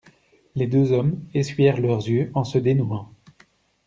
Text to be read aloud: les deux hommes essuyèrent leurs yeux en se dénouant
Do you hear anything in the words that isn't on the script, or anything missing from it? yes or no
no